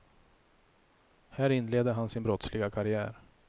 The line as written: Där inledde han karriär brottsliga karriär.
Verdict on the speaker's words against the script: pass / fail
fail